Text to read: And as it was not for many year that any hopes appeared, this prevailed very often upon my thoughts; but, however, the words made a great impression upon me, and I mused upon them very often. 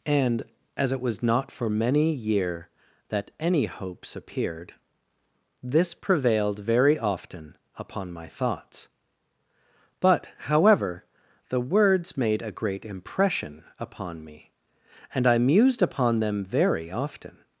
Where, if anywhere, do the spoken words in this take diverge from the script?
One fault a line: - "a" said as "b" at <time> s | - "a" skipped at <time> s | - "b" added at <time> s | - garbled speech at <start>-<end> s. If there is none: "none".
none